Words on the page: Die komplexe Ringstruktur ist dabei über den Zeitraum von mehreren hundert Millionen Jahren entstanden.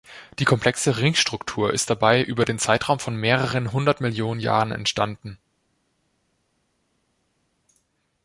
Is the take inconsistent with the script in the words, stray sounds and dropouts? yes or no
no